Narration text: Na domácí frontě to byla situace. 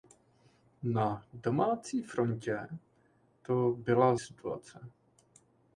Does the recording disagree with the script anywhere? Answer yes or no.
no